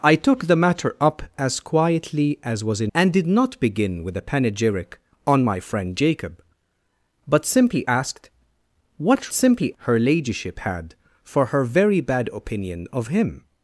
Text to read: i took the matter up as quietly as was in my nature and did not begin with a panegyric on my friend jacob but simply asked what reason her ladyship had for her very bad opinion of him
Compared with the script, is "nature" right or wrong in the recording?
wrong